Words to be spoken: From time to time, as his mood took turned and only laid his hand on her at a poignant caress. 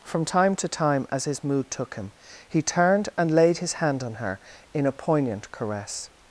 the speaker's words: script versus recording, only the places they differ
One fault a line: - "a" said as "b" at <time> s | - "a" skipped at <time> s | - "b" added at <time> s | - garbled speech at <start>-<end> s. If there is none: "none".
- "him he" added at 1.9 s
- "only" skipped at 3.3 s
- "at" said as "in" at 4.7 s